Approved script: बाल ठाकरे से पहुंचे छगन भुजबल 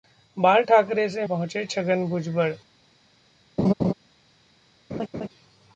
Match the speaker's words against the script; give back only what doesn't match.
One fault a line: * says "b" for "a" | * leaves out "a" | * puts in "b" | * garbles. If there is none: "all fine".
all fine